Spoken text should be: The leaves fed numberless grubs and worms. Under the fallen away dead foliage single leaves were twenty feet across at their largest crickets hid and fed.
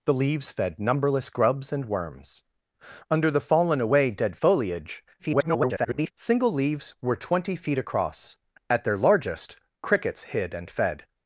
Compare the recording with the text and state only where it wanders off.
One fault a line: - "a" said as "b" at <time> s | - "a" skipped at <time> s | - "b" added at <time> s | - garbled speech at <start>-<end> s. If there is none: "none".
- garbled speech at 5.2-6.1 s